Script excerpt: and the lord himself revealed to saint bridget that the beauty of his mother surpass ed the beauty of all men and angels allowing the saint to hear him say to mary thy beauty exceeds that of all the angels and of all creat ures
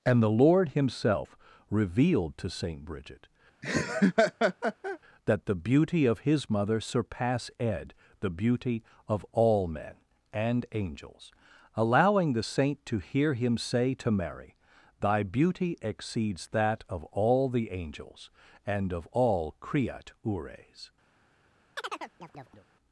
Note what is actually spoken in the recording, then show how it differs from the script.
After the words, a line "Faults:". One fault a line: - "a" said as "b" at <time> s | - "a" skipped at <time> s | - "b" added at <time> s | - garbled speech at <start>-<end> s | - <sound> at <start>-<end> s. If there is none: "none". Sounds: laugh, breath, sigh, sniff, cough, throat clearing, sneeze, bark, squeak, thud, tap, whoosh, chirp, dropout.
and the lord himself revealed to saint bridget that the beauty of his mother surpass ed the beauty of all men and angels allowing the saint to hear him say to mary thy beauty exceeds that of all the angels and of all creat ures
Faults:
- laugh at 3.6-5.0 s
- chirp at 21.8-22.7 s